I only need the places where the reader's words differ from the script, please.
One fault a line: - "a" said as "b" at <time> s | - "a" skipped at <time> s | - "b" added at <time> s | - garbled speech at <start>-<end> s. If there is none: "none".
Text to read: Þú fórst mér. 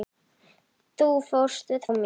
none